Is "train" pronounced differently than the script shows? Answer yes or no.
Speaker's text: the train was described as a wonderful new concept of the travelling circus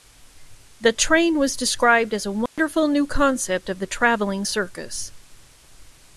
no